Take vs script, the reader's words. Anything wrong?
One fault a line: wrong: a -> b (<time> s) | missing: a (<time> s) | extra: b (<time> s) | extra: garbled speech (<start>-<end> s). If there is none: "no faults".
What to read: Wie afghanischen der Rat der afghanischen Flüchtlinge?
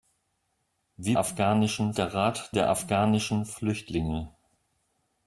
no faults